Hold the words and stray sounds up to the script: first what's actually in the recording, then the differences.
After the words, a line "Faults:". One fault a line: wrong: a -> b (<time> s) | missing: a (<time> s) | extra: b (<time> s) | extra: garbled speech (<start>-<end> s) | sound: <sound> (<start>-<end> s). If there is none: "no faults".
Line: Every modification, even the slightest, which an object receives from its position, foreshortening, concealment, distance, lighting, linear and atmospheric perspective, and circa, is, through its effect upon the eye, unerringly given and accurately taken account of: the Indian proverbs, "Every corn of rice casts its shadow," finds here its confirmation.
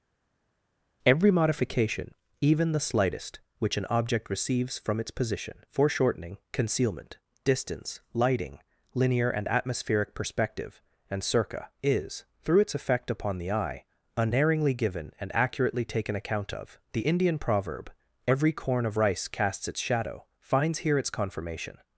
Every modification, even the slightest, which an object receives from its position, foreshortening, concealment, distance, lighting, linear and atmospheric perspective, and circa, is, through its effect upon the eye, unerringly given and accurately taken account of: the Indian proverb, "Every corn of rice casts its shadow," finds here its confirmation.
Faults:
wrong: proverbs -> proverb (17.4 s)